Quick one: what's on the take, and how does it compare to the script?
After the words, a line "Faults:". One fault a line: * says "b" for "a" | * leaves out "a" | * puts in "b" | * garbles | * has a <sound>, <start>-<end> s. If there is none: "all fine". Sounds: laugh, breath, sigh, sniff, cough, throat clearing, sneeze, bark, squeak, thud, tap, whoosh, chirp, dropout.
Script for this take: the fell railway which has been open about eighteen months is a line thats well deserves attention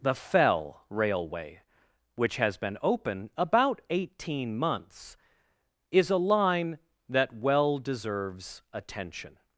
the fell railway which has been open about eighteen months is a line that well deserves attention
Faults:
* says "that" for "thats"